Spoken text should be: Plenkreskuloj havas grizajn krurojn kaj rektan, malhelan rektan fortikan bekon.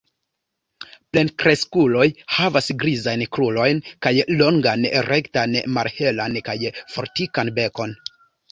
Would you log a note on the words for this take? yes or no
yes